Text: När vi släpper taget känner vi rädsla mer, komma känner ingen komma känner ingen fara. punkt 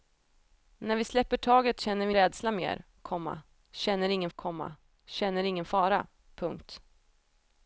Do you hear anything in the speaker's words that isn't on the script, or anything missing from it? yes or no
no